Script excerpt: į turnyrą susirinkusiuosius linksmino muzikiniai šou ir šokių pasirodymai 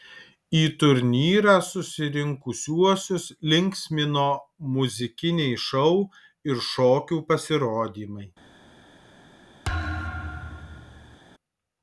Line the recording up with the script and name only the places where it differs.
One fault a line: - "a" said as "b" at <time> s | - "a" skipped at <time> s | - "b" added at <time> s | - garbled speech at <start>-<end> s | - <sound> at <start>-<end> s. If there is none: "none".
- thud at 9.6-11.2 s